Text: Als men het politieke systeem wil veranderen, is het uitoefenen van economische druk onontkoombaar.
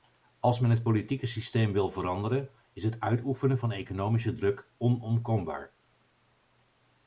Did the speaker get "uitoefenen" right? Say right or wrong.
right